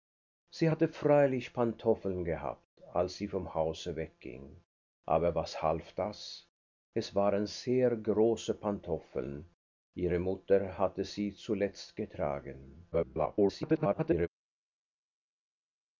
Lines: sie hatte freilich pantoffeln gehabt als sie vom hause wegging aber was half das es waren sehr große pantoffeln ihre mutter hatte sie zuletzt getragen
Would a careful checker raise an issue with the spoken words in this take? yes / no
yes